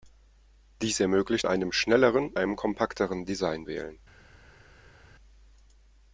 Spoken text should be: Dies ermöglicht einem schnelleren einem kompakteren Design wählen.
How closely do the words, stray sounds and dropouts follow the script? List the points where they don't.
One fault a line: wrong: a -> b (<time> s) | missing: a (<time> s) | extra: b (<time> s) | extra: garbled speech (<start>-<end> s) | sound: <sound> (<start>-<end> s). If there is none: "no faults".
no faults